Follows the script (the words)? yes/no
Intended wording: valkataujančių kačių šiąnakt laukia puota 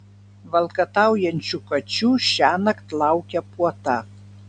yes